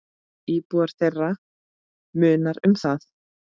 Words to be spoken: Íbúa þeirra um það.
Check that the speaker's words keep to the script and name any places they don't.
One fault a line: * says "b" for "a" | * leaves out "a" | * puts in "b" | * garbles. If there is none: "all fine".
* puts in "munar"